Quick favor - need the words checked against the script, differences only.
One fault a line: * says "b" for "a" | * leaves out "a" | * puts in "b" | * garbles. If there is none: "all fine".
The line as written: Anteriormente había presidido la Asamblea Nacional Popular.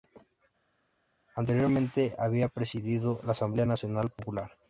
all fine